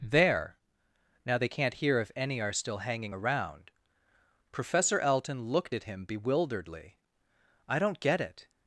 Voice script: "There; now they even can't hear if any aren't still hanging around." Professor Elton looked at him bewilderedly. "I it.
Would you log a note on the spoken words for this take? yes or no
yes